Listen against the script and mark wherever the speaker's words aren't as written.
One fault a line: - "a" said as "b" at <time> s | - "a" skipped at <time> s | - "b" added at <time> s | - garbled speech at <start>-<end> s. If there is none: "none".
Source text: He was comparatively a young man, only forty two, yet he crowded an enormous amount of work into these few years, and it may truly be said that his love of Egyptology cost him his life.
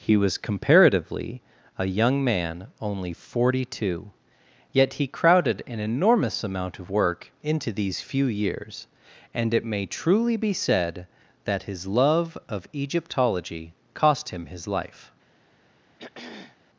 none